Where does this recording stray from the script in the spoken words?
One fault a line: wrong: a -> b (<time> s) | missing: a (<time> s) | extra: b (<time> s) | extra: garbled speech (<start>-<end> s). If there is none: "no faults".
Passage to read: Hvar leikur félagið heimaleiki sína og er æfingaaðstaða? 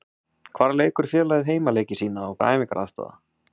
no faults